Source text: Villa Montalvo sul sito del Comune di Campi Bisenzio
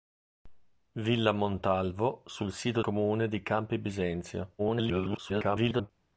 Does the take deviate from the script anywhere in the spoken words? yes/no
yes